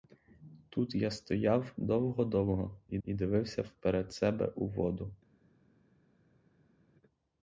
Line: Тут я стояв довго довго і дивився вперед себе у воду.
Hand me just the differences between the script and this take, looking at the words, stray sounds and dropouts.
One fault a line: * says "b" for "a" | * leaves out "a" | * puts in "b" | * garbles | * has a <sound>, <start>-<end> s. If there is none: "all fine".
* puts in "і"